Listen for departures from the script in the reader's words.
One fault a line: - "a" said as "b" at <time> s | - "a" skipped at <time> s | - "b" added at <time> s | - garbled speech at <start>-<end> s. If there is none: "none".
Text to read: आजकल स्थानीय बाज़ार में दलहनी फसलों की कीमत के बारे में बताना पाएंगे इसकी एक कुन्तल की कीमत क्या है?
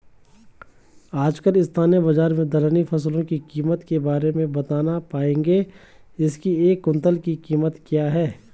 none